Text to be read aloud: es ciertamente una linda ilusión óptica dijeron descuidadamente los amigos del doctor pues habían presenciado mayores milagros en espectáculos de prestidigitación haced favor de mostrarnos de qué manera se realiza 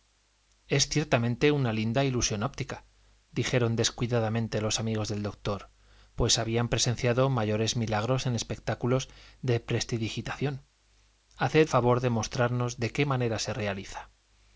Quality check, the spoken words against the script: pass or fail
pass